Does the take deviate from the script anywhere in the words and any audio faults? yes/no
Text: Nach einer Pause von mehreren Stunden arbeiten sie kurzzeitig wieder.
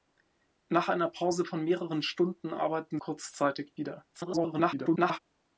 yes